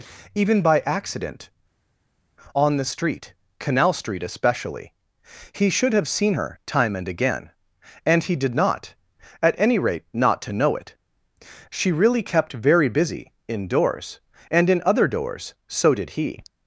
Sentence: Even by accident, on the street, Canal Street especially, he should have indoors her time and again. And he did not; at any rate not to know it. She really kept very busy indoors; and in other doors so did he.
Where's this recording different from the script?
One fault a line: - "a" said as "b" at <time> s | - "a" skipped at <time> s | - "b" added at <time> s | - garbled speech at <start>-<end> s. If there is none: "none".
- "indoors" said as "seen" at 6.1 s